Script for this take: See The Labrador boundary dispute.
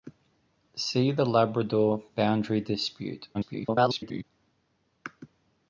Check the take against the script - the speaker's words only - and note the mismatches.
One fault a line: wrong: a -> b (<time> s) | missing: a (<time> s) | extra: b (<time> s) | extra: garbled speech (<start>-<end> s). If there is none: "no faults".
extra: garbled speech (3.3-4.2 s)